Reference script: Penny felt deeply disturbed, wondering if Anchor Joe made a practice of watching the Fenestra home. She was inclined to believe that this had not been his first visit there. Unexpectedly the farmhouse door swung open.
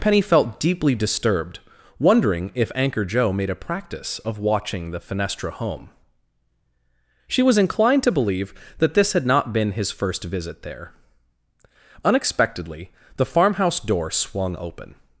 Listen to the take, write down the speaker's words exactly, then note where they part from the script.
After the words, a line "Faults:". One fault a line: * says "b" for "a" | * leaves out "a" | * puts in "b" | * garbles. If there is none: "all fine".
Penny felt deeply disturbed, wondering if Anchor Joe made a practice of watching the Fenestra home. She was inclined to believe that this had not been his first visit there. Unexpectedly the farmhouse door swung open.
Faults:
all fine